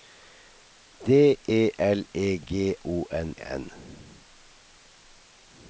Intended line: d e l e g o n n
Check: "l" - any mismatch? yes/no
no